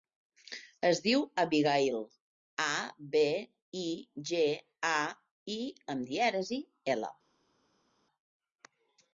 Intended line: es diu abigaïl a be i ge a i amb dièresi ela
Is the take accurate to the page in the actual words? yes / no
yes